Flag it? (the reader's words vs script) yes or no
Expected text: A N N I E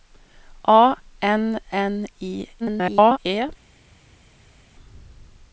yes